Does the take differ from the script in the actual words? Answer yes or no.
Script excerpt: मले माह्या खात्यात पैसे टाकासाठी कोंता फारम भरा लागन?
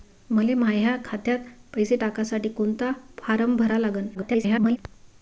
yes